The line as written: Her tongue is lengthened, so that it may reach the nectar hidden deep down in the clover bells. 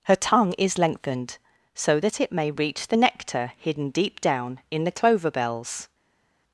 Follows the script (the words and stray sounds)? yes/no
yes